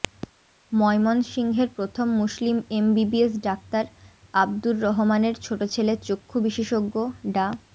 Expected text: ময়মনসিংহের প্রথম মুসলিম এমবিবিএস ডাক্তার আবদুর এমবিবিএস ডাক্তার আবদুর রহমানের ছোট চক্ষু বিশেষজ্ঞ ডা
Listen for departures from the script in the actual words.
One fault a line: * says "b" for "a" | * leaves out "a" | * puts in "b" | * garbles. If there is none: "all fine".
* leaves out "এমবিবিএস ডাক্তার আবদুর"
* puts in "ছেলে"